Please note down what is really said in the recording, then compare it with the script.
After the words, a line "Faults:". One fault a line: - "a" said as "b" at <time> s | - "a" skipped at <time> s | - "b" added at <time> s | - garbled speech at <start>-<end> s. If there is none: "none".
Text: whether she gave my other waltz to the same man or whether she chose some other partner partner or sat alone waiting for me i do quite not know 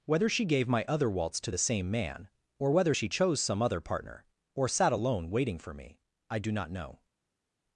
whether she gave my other waltz to the same man or whether she chose some other partner or sat alone waiting for me i do not know
Faults:
- "partner" skipped at 4.2 s
- "quite" skipped at 6.5 s